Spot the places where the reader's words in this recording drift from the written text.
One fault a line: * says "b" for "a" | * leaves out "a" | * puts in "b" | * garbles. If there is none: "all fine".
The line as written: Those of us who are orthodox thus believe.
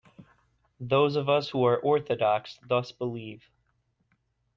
all fine